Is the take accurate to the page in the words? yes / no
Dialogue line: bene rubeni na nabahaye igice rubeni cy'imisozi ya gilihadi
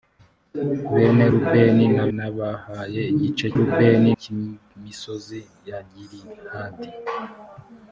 yes